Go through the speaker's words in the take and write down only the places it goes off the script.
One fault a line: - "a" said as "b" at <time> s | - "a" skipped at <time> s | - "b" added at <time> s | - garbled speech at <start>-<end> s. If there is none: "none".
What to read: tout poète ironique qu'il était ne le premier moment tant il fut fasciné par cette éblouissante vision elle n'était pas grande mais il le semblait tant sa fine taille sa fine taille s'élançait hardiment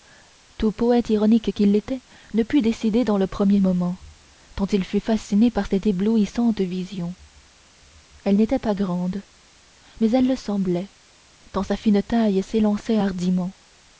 - "put décider dans" added at 2.4 s
- "il" said as "elle" at 10.1 s
- "sa fine taille" skipped at 12.4 s